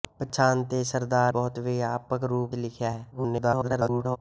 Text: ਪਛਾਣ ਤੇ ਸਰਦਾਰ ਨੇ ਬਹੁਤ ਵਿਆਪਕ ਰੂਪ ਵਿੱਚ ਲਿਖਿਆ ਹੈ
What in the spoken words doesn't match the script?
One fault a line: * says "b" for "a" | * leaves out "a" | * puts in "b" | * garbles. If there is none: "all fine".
* leaves out "ਨੇ"
* leaves out "ਵਿੱਚ"
* garbles